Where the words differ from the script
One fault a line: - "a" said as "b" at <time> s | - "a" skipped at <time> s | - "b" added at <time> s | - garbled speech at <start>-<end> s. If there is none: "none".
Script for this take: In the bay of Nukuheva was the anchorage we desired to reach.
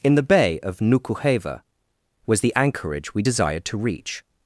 none